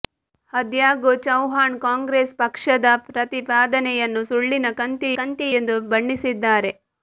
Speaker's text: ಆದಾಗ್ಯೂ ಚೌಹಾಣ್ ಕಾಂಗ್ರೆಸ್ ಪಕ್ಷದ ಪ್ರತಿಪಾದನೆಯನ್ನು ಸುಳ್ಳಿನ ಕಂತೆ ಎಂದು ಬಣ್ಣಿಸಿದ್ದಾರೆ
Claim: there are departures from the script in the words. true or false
true